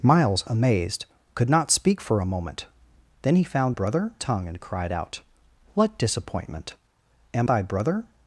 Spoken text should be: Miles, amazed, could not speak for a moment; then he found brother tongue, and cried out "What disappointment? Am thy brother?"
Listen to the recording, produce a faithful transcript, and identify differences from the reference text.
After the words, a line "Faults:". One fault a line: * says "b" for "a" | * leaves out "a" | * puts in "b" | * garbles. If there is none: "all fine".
Miles, amazed, could not speak for a moment; then he found brother tongue, and cried out "What disappointment? Am thy brother?"
Faults:
all fine